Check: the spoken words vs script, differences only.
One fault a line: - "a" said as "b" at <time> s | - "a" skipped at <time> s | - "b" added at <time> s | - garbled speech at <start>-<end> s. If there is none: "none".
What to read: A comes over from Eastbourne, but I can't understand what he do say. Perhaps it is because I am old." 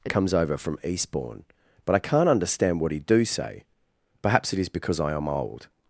none